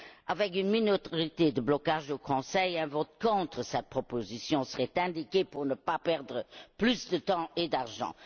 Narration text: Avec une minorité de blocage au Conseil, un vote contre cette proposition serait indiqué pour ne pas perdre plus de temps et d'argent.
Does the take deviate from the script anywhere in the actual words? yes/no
no